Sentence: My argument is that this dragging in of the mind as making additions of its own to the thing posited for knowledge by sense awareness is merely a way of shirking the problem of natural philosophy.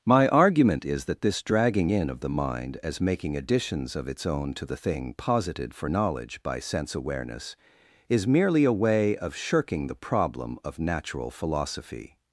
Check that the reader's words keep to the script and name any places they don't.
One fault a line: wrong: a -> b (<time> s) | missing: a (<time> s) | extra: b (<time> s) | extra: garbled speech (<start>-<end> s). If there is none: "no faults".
no faults